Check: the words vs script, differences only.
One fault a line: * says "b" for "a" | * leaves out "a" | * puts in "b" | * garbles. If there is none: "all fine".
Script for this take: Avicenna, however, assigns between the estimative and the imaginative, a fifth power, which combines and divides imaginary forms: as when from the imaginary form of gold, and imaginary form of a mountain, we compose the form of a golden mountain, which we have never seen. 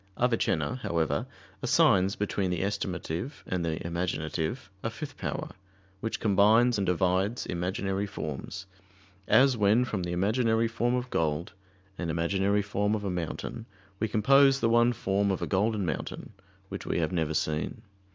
* puts in "one"